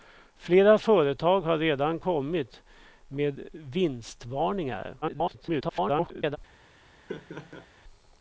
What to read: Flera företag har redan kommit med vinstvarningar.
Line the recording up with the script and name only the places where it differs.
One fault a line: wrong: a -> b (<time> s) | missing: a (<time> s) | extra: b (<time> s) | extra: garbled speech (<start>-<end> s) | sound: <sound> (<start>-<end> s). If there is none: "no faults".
extra: garbled speech (5.0-6.4 s)
sound: laugh (7.1-7.7 s)